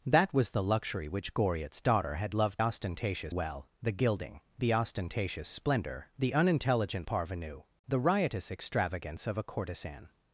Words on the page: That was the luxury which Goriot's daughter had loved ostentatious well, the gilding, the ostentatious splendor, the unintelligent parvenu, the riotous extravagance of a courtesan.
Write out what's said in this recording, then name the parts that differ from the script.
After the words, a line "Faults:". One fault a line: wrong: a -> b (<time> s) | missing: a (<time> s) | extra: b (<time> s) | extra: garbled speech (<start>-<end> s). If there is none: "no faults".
That was the luxury which Goriot's daughter had loved ostentatious well, the gilding, the ostentatious splendor, the unintelligent parvenu, the riotous extravagance of a courtesan.
Faults:
no faults